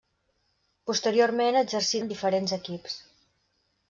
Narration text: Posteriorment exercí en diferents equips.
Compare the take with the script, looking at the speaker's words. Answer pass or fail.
pass